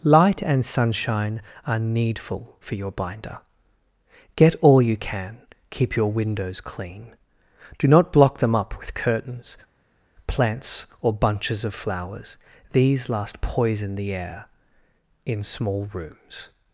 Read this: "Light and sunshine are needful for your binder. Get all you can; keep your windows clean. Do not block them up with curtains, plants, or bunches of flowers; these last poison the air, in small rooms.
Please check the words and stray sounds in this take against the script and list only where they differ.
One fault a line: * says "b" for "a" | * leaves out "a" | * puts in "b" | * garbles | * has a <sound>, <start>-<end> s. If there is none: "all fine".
all fine